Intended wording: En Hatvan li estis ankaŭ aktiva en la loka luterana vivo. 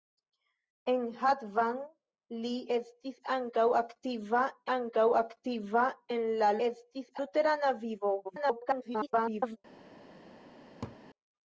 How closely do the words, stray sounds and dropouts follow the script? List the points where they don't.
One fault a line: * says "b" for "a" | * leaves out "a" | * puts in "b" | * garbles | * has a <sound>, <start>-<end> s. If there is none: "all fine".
* puts in "ankaŭ aktiva"
* says "estis" for "loka"
* garbles
* has a laugh, 10.8-11.0 s